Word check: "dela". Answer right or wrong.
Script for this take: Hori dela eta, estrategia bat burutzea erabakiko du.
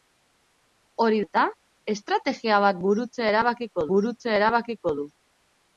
wrong